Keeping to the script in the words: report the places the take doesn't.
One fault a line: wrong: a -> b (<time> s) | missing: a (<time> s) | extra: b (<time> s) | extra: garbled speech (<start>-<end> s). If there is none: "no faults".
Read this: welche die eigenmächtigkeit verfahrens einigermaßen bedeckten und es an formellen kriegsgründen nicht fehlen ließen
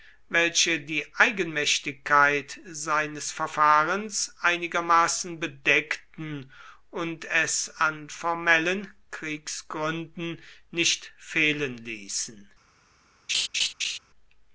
extra: seines (2.6 s)